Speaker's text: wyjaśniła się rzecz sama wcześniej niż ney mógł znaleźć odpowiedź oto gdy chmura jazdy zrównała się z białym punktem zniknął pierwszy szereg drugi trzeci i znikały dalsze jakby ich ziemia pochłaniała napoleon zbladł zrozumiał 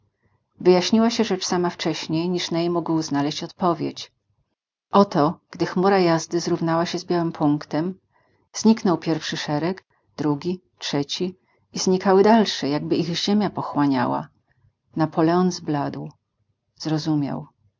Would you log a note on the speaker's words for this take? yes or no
no